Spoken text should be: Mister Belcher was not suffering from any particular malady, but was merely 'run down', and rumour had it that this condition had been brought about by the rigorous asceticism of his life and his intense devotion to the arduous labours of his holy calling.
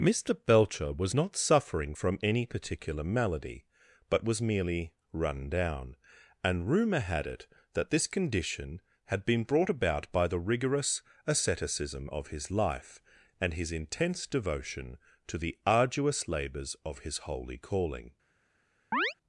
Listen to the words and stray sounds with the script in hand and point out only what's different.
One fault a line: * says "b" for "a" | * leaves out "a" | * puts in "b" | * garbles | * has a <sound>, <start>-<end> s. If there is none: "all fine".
* has a chirp, 18.9-19.1 s